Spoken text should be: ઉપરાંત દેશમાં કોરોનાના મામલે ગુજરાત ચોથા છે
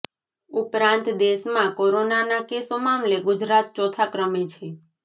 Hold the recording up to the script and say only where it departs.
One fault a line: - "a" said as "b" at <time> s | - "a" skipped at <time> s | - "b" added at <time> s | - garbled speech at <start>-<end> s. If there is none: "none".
- "કેસો" added at 2.5 s
- "ક્રમે" added at 4.1 s